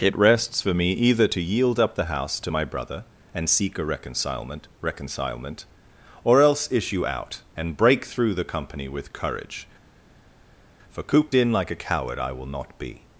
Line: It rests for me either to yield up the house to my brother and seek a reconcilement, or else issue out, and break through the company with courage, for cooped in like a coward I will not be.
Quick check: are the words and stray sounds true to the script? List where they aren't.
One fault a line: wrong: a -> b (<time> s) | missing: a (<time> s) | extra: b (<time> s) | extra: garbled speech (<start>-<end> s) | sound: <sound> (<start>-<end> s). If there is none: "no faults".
extra: reconcilement (4.8 s)